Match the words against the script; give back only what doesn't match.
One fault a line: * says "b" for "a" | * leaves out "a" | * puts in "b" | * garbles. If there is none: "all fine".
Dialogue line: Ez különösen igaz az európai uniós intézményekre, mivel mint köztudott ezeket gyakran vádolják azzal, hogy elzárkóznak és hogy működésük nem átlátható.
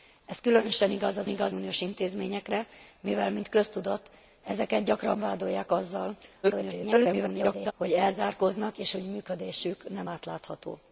* says "igaz" for "európai"
* garbles